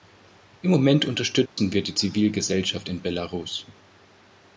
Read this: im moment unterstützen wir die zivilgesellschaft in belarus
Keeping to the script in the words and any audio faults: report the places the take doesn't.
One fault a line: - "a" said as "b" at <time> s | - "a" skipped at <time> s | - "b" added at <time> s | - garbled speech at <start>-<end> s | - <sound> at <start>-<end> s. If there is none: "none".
- dropout at 1.5-1.6 s